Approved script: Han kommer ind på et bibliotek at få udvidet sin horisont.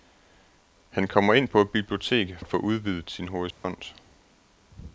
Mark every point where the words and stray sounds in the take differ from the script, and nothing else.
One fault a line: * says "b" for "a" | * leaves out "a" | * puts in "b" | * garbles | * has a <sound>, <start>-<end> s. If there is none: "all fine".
* has a dropout, 3.5-3.6 s